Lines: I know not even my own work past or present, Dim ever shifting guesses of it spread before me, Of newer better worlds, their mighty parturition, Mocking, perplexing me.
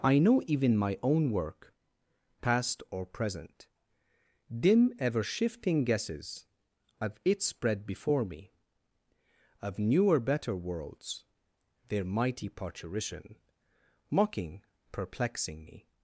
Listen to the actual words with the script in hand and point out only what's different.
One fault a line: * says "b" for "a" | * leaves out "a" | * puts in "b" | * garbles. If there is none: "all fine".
* leaves out "not"